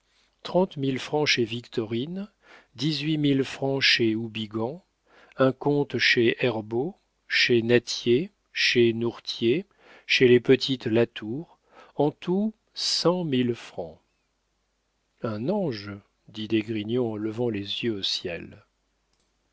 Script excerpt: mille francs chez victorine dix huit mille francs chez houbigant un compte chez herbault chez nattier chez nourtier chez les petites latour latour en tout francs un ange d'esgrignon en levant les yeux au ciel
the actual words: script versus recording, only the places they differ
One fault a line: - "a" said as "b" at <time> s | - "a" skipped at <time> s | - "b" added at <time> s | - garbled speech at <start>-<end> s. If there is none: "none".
- "latour" skipped at 11.6 s
- "cent mille" added at 12.7 s
- "dit" added at 16.3 s